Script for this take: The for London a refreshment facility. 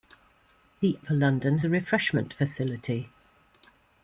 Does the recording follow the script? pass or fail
pass